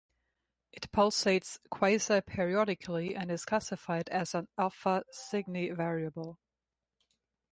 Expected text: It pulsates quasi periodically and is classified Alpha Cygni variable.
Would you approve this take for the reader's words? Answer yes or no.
no